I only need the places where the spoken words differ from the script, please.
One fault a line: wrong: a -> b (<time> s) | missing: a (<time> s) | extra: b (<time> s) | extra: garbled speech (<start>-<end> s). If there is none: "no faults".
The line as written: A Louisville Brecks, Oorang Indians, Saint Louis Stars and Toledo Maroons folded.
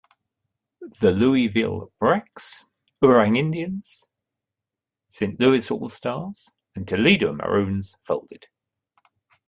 wrong: A -> The (1.0 s)
extra: All (5.7 s)